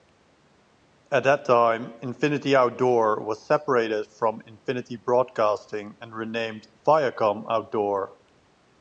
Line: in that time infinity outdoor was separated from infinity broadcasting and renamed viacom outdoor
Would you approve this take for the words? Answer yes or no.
no